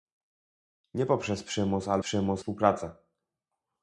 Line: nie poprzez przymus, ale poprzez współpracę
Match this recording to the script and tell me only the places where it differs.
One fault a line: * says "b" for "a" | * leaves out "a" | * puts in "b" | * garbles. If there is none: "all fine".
* says "przymus" for "poprzez"